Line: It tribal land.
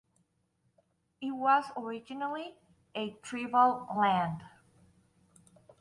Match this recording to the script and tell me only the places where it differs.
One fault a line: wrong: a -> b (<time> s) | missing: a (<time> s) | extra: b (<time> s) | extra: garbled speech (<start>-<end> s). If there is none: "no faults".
extra: was originally a (1.3 s)